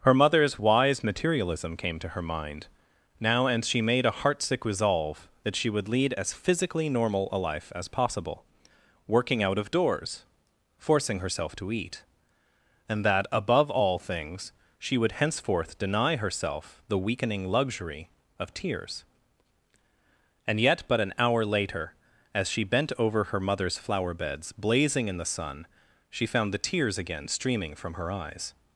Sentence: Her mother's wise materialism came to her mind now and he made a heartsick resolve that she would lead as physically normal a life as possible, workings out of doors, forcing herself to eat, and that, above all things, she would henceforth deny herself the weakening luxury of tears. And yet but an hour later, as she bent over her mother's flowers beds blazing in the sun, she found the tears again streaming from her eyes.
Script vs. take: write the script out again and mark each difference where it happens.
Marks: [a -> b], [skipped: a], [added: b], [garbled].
Her mother's wise materialism came to her mind now and [he -> she] made a heartsick resolve that she would lead as physically normal a life as possible, [workings -> working] out of doors, forcing herself to eat, and that, above all things, she would henceforth deny herself the weakening luxury of tears. And yet but an hour later, as she bent over her mother's [flowers -> flower] beds blazing in the sun, she found the tears again streaming from her eyes.